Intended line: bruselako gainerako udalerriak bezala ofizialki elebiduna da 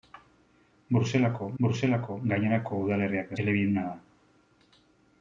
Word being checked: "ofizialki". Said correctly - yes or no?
no